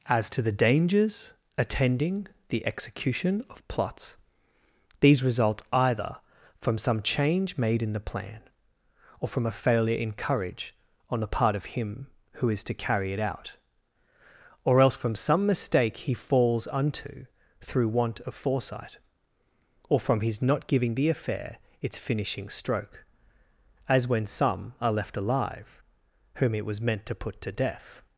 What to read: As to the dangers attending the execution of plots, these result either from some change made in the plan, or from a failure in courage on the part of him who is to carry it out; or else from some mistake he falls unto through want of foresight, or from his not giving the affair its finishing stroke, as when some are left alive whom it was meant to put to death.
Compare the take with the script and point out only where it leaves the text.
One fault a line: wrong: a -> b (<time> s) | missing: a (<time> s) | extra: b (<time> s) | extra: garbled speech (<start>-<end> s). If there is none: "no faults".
no faults